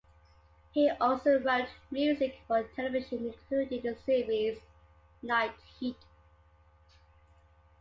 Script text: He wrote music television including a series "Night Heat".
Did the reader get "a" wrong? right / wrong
wrong